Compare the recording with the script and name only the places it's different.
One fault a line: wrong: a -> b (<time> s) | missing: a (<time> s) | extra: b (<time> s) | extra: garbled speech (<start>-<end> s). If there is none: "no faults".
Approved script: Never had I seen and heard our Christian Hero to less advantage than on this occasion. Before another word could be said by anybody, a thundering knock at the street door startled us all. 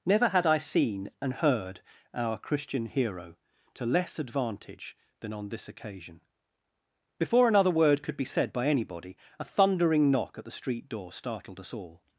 no faults